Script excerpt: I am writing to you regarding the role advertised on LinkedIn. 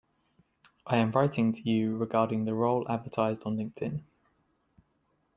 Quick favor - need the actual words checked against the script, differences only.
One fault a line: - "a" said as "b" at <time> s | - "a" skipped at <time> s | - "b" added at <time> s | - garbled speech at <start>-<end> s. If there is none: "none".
none